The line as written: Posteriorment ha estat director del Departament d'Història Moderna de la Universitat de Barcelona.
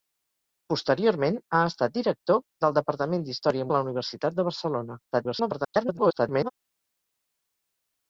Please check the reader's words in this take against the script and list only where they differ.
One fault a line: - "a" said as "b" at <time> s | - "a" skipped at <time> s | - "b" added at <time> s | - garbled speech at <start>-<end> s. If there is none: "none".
- "Moderna" skipped at 3.7 s
- garbled speech at 5.1-6.5 s